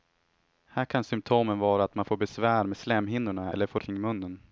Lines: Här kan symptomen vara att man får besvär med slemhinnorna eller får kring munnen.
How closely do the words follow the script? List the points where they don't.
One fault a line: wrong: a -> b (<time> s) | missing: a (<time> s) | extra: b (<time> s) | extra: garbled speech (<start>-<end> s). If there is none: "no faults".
no faults